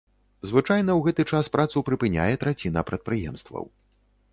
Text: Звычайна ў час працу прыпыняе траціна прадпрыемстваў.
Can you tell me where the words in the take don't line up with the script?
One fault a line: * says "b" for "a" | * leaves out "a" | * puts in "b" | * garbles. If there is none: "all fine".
* puts in "гэты"